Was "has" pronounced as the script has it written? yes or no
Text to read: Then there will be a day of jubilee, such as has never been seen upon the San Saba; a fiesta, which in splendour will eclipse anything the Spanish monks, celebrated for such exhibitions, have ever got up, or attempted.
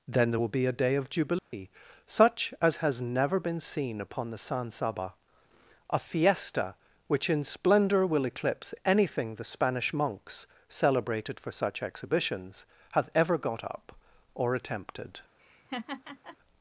yes